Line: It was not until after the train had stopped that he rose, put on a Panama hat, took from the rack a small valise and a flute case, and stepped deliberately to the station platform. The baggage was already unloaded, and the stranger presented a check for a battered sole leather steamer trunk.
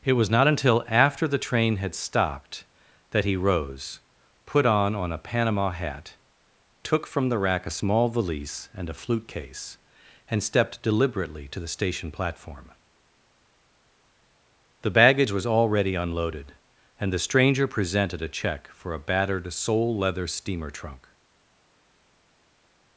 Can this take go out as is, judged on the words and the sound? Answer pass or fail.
fail